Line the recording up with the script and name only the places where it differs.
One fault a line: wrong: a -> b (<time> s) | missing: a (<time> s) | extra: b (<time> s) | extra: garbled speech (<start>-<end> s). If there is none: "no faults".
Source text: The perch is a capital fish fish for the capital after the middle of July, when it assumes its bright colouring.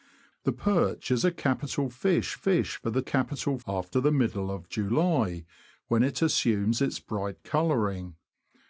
no faults